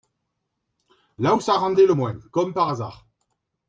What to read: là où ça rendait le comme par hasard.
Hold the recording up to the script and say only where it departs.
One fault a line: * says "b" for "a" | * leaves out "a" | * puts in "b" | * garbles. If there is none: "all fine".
* puts in "moins"